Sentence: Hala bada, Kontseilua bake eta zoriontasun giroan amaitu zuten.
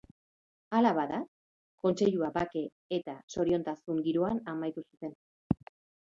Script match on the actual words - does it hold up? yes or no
yes